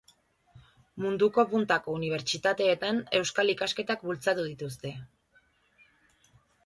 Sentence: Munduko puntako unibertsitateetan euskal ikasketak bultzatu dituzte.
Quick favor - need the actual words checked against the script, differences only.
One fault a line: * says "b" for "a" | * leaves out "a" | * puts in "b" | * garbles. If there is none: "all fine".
all fine